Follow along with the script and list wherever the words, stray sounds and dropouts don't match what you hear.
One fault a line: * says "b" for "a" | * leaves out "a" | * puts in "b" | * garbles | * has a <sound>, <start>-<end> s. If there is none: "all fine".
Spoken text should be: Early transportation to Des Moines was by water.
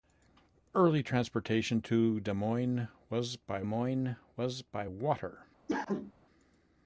* puts in "Moines was by"
* has a cough, 5.7-6.1 s